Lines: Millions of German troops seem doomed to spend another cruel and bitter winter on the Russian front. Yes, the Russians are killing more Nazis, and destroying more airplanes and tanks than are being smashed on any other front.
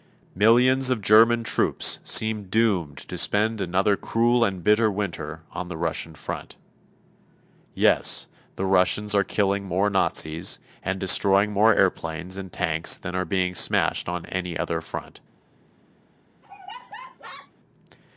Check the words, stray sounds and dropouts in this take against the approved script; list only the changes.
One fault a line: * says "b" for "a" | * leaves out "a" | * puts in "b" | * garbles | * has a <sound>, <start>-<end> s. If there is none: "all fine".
* has a laugh, 16.4-17.5 s